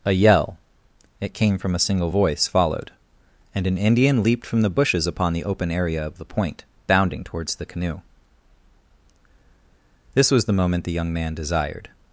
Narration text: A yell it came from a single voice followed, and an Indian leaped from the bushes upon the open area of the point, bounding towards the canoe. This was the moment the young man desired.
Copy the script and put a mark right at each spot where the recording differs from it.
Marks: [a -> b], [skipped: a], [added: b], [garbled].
A yell it came from a single voice followed, and an Indian leaped from the bushes upon the open area of the point, bounding towards the canoe. This was the moment the young man desired.